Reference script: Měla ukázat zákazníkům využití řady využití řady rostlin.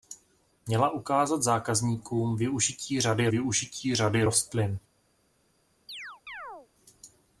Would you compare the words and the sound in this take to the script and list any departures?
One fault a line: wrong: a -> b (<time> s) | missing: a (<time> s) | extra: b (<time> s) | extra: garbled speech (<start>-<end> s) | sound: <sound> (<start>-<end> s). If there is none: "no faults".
sound: chirp (5.9-6.7 s)